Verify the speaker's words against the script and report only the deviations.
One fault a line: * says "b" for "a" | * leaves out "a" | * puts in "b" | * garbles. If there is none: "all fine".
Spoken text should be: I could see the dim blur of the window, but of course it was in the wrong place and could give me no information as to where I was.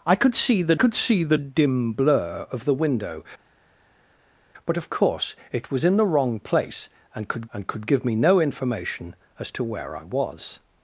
* puts in "could see the"
* puts in "and could"